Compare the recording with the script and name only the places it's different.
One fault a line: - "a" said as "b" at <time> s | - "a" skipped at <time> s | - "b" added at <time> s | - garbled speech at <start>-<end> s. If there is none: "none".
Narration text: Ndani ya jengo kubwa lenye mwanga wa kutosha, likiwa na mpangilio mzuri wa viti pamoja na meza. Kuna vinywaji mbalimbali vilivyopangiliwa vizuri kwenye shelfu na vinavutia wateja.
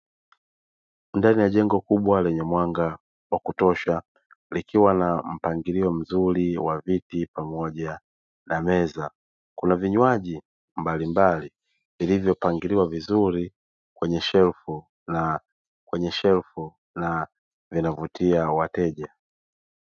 - "kwenye shelfu na" added at 15.8 s